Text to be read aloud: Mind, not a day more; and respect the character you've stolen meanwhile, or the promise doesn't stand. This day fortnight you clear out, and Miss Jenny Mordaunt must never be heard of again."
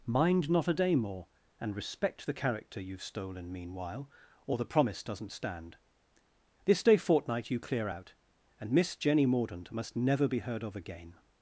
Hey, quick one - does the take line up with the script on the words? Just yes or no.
yes